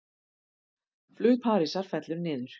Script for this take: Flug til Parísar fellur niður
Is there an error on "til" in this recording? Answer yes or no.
yes